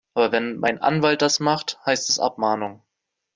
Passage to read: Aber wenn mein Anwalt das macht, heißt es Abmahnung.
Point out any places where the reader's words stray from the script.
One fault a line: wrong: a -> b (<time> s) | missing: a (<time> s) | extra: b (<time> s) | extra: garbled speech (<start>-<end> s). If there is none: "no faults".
no faults